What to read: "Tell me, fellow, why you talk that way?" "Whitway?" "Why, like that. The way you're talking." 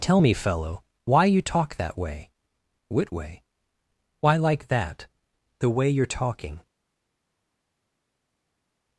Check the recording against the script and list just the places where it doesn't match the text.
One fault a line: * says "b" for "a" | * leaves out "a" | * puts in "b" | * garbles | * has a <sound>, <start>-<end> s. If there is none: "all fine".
all fine